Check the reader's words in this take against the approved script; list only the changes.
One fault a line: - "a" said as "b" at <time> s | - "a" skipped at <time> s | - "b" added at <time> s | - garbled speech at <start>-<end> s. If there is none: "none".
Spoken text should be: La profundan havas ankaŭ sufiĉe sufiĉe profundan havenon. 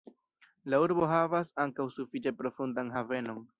- "profundan" said as "urbo" at 0.8 s
- "sufiĉe" skipped at 2.4 s